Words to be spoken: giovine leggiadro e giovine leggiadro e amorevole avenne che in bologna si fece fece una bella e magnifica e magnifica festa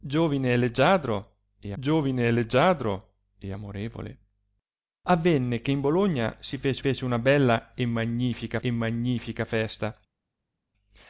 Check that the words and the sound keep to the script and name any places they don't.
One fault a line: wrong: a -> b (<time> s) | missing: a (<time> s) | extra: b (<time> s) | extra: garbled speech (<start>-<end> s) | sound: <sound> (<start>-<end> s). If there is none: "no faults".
no faults